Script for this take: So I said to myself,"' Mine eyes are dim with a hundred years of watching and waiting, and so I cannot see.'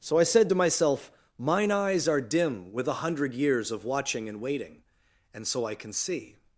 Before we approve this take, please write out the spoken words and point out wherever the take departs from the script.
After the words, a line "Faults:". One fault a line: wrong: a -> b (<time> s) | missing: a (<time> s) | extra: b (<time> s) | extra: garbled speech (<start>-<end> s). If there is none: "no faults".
So I said to myself,"' Mine eyes are dim with a hundred years of watching and waiting, and so I can see.'
Faults:
wrong: cannot -> can (5.7 s)